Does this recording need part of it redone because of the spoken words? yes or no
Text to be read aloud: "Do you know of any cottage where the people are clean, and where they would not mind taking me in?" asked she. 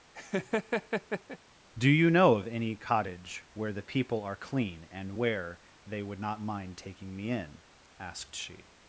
no